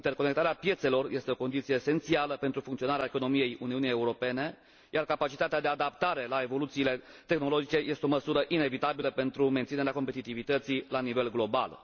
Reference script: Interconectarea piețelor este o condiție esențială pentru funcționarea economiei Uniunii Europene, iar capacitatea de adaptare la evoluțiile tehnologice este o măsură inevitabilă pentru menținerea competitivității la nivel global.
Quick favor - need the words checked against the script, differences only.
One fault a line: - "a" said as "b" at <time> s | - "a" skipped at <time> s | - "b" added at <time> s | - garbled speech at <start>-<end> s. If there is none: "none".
none